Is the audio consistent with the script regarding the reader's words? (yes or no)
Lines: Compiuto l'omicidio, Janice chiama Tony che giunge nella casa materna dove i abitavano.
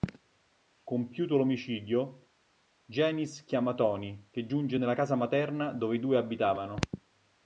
no